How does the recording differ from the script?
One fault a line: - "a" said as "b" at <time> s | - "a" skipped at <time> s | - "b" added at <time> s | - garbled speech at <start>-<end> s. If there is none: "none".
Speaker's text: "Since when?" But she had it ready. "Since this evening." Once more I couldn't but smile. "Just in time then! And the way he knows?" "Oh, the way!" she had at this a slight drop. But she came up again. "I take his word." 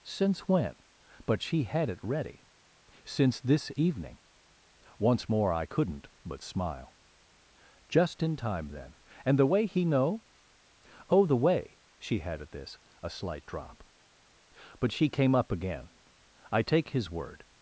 - "knows" said as "know" at 9.8 s